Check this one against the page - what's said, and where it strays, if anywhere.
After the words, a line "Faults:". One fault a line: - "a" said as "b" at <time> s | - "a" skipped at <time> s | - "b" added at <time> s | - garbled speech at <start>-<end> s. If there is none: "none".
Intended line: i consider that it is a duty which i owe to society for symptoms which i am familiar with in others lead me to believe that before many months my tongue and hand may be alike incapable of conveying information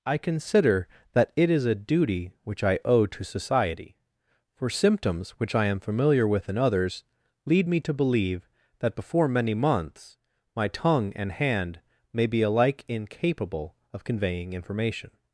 i consider that it is a duty which i owe to society for symptoms which i am familiar with in others lead me to believe that before many months my tongue and hand may be alike incapable of conveying information
Faults:
none